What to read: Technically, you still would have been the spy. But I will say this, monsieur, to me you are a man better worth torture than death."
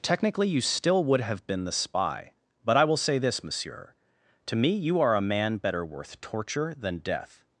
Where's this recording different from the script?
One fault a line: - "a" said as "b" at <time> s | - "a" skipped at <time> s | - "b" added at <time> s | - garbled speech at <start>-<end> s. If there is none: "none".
none